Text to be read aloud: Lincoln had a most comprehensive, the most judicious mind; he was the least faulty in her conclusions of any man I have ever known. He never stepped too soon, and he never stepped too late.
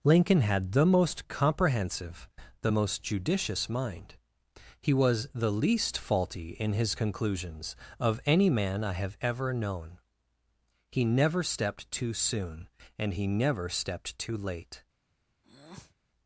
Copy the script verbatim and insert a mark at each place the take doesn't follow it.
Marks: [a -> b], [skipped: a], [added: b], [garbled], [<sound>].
Lincoln had [a -> the] most comprehensive, the most judicious mind; he was the least faulty in [her -> his] conclusions of any man I have ever known. He never stepped too soon, and he never stepped too late. [breath]